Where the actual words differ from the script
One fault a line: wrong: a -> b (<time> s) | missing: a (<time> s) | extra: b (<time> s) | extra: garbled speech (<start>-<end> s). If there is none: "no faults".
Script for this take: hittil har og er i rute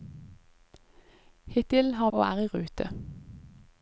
no faults